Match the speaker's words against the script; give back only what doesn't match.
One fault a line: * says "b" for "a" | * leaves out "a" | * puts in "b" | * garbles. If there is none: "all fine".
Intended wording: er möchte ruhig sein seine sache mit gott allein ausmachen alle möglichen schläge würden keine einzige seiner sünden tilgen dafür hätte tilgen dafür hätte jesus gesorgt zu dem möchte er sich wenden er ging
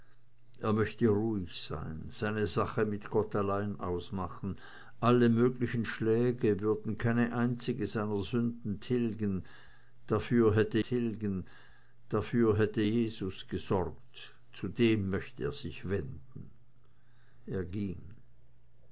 all fine